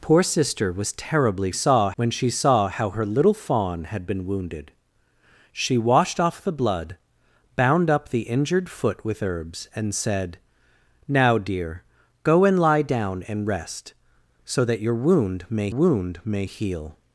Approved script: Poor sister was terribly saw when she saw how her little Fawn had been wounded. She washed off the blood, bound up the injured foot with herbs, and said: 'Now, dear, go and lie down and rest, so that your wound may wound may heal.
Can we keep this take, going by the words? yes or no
yes